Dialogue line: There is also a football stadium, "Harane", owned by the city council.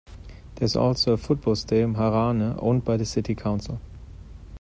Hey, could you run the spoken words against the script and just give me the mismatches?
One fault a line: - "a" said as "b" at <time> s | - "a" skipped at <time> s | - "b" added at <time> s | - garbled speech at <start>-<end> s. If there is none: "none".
none